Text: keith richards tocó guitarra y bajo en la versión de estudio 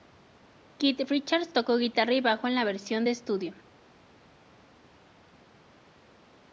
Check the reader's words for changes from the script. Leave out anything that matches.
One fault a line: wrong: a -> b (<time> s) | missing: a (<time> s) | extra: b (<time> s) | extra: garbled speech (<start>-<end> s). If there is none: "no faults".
no faults